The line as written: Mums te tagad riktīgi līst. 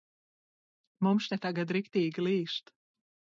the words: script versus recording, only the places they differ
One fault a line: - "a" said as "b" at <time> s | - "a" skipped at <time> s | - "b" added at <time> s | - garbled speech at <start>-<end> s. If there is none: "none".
none